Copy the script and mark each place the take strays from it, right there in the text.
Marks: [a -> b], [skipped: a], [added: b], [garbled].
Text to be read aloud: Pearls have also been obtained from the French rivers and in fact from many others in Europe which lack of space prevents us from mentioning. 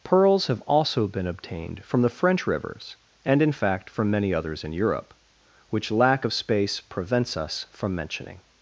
Pearls have also been obtained from the French rivers and in fact from many others in Europe which lack of space prevents us from mentioning.